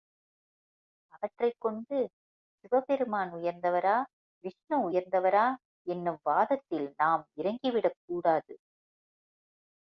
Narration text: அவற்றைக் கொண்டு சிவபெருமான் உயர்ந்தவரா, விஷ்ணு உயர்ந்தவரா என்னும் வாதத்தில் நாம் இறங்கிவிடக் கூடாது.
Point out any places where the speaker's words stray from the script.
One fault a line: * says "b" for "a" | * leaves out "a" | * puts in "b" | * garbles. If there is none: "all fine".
all fine